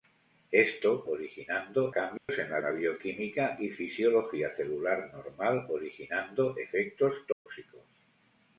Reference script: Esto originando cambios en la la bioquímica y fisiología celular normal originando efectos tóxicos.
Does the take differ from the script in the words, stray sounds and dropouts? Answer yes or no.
yes